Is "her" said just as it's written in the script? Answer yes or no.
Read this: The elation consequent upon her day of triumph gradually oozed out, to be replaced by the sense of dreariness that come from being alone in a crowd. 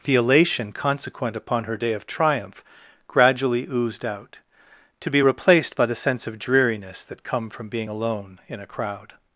yes